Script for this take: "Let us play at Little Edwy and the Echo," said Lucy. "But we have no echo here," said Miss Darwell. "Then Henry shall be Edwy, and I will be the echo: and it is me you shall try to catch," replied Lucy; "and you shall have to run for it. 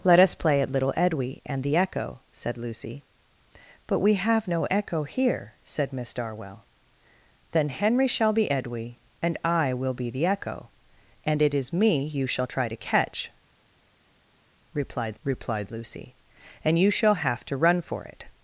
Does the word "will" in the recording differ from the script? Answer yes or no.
no